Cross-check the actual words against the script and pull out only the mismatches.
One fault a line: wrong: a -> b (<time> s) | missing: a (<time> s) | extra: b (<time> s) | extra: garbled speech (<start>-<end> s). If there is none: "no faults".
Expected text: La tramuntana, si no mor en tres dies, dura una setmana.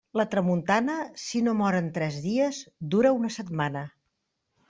no faults